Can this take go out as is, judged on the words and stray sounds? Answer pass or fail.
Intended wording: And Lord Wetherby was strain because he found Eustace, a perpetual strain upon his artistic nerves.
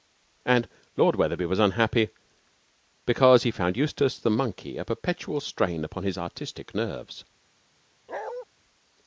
fail